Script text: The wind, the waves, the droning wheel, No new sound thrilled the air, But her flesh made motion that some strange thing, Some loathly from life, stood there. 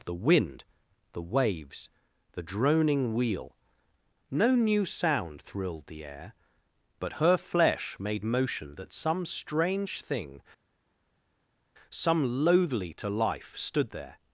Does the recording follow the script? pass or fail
fail